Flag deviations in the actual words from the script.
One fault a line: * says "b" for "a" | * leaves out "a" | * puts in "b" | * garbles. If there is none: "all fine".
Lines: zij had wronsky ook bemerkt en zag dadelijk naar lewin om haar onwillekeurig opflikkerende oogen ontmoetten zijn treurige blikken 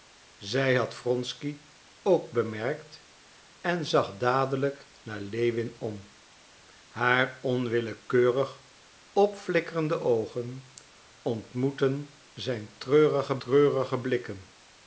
* puts in "treurige"